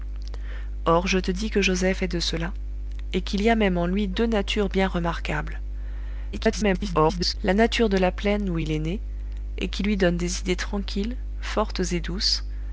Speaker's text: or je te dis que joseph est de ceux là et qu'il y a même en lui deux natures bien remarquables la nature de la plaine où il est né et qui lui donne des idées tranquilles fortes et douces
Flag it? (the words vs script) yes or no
yes